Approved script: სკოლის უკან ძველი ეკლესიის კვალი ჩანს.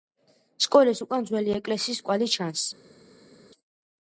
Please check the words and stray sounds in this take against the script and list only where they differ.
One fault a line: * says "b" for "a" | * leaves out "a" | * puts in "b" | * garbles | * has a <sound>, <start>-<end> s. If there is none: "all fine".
all fine